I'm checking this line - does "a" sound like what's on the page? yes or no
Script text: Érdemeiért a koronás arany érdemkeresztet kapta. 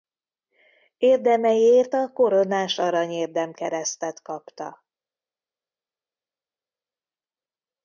yes